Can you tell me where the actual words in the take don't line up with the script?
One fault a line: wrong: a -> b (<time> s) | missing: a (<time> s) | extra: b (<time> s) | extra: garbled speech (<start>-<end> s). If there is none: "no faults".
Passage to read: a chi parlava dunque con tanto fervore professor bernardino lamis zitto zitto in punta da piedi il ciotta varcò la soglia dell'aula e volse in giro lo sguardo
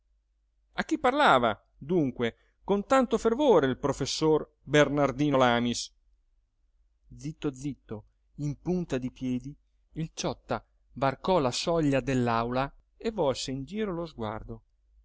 extra: il (3.7 s)
wrong: da -> di (9.0 s)